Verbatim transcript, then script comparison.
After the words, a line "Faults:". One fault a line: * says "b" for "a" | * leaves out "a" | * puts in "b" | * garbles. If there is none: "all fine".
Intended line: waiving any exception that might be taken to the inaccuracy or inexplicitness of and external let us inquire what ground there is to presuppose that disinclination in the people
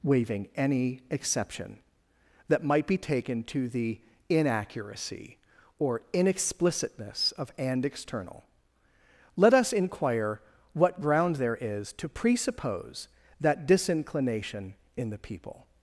waiving any exception that might be taken to the inaccuracy or inexplicitness of and external let us inquire what ground there is to presuppose that disinclination in the people
Faults:
all fine